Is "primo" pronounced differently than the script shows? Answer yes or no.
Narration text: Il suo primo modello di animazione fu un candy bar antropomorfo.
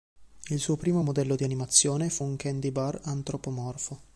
no